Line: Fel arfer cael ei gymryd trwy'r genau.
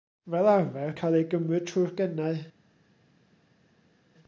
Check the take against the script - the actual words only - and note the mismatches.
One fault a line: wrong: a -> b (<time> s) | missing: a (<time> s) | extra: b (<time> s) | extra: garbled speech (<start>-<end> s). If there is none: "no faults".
no faults